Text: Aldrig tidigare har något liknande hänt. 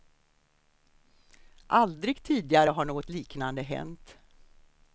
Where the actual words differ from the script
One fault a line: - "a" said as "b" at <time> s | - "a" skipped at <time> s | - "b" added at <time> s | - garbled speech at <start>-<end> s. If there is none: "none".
none